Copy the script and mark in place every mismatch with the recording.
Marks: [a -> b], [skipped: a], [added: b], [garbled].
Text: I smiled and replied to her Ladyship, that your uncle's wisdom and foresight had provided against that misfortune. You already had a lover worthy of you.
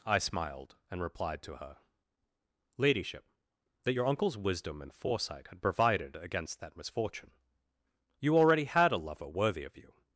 I smiled and replied to her Ladyship, that your uncle's wisdom and foresight had provided against that misfortune. You already had a lover worthy of you.